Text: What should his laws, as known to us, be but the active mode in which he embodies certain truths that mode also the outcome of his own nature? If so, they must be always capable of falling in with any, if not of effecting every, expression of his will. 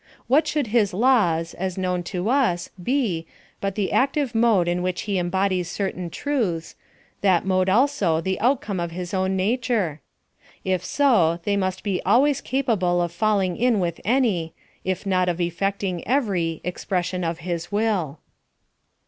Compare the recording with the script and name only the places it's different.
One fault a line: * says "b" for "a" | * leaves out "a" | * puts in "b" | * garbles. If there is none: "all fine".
all fine